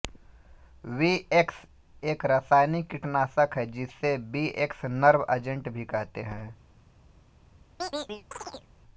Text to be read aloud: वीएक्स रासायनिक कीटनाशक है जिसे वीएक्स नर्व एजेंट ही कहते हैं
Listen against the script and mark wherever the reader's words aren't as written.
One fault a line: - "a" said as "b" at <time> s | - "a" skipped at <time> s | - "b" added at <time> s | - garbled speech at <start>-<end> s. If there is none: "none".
- "एक" added at 2.0 s
- "ही" said as "भी" at 5.7 s